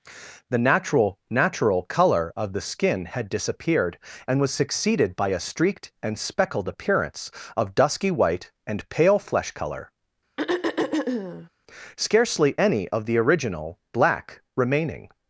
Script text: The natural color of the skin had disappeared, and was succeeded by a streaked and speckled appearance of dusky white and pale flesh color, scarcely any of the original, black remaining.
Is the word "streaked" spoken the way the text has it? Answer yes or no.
yes